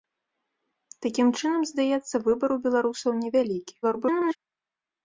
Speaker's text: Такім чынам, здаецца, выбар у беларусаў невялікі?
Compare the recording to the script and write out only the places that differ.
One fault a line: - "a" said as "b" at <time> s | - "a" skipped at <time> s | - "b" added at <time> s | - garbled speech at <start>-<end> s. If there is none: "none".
- garbled speech at 3.8-4.4 s